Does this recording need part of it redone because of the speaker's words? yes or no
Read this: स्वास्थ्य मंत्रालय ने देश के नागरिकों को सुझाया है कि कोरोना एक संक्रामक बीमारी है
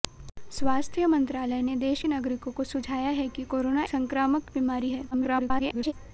yes